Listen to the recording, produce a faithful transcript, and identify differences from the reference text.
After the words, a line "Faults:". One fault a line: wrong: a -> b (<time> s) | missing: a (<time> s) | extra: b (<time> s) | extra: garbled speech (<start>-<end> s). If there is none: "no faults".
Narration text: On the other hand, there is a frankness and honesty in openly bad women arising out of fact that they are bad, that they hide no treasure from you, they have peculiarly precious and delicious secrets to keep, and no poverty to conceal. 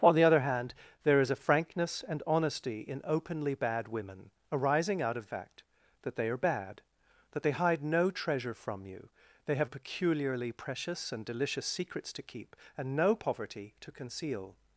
On the other hand, there is a frankness and honesty in openly bad women arising out of fact that they are bad, that they hide no treasure from you, they have peculiarly precious and delicious secrets to keep, and no poverty to conceal.
Faults:
no faults